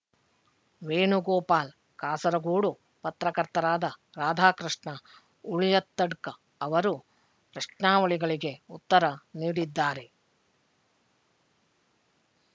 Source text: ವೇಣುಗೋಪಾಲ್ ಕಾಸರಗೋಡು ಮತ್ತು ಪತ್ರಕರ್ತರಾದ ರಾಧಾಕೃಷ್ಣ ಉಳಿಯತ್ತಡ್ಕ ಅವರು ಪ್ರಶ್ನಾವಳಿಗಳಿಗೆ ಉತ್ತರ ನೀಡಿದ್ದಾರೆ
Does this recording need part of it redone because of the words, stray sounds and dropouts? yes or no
yes